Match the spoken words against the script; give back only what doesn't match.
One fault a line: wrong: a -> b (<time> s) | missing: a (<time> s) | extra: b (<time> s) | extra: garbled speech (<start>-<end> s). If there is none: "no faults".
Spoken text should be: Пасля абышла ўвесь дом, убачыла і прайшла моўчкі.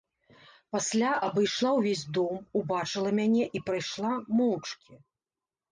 extra: мяне (3.2 s)